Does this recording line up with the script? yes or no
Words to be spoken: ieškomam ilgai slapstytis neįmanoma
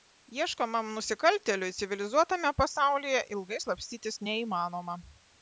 no